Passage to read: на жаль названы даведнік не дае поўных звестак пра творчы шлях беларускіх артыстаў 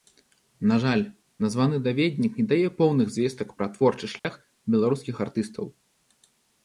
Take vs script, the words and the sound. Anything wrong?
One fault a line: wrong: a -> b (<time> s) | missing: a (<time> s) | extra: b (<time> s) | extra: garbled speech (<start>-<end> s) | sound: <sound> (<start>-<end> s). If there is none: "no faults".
sound: dropout (4.2-4.2 s)